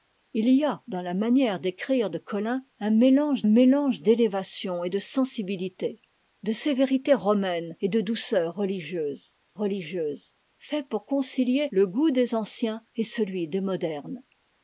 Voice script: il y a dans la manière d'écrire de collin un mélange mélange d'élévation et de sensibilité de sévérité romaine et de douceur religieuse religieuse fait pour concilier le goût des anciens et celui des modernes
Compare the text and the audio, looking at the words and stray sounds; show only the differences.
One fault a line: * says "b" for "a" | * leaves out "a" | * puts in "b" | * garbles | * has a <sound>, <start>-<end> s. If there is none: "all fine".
all fine